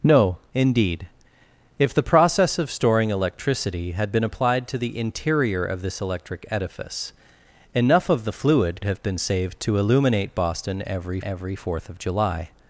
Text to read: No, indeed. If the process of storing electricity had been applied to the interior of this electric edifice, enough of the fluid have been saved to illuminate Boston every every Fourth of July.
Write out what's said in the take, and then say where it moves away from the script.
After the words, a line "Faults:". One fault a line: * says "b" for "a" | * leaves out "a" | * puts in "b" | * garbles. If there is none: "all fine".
No, indeed. If the process of storing electricity had been applied to the interior of this electric edifice, enough of the fluid have been saved to illuminate Boston every every Fourth of July.
Faults:
all fine